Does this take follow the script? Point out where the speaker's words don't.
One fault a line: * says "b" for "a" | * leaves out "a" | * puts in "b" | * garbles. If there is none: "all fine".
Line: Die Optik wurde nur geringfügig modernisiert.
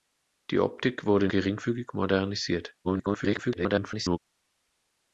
* leaves out "nur"
* garbles